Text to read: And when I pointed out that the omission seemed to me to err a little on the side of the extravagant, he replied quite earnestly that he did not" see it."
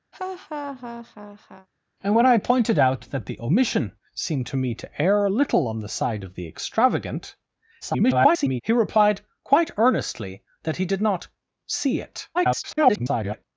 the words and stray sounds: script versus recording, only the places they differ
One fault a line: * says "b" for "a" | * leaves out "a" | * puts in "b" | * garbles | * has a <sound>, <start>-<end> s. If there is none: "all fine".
* has a laugh, 0.1-1.7 s
* garbles
* garbles